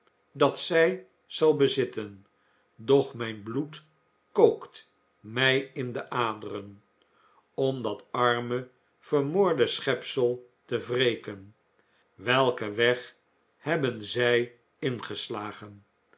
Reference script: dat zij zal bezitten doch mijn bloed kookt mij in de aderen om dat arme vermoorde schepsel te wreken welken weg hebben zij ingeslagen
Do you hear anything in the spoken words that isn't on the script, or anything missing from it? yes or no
no